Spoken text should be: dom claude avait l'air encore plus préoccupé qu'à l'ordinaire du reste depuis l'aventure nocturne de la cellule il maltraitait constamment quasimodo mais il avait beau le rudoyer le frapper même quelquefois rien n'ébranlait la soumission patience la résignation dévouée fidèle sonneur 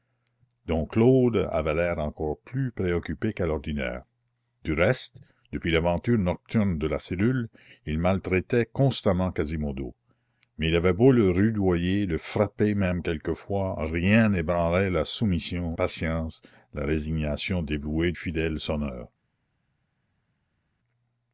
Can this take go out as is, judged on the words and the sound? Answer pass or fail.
pass